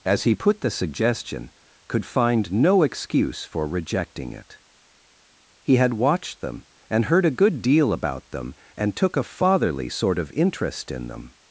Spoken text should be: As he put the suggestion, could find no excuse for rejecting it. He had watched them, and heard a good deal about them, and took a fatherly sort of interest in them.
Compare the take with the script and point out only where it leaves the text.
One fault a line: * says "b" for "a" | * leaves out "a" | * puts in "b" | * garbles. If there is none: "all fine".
all fine